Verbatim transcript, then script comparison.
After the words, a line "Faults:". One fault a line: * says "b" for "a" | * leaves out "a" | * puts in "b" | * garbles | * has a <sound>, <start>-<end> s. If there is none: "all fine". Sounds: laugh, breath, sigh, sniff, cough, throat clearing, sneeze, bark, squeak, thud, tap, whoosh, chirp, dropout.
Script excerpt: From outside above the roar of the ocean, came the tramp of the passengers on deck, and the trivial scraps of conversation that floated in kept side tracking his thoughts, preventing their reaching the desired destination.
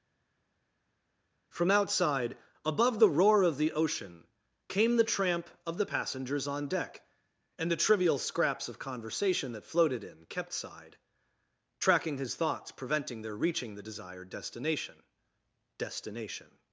From outside above the roar of the ocean, came the tramp of the passengers on deck, and the trivial scraps of conversation that floated in kept side tracking his thoughts, preventing their reaching the desired destination destination.
Faults:
* puts in "destination"